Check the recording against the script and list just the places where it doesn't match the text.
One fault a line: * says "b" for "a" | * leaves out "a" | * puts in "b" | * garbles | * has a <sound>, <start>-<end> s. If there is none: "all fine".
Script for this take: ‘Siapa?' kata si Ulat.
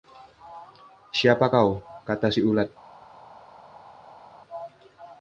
* puts in "kau"